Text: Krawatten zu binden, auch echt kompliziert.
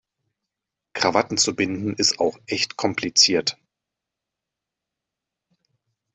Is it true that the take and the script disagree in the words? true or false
true